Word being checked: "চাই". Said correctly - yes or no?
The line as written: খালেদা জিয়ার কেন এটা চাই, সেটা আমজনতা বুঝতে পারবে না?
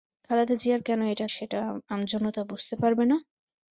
no